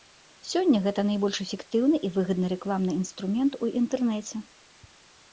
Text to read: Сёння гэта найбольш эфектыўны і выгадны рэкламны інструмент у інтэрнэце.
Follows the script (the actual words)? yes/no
yes